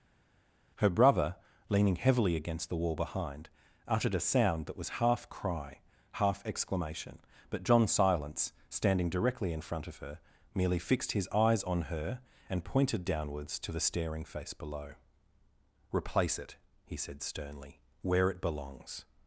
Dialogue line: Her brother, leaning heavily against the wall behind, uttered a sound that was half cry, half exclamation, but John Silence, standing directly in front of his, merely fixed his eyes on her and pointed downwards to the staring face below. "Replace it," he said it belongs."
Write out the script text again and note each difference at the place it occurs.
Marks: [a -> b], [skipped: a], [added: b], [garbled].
Her brother, leaning heavily against the wall behind, uttered a sound that was half cry, half exclamation, but John Silence, standing directly in front of [his, -> her] merely fixed his eyes on her and pointed downwards to the staring face below. "Replace it," he said [added: sternly where] it belongs."